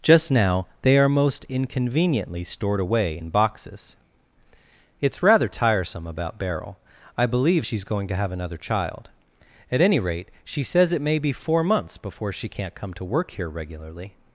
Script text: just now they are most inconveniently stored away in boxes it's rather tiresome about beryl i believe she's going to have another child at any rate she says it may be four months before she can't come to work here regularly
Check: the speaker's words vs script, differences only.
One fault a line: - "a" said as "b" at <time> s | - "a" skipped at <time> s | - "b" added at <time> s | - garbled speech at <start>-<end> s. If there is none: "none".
none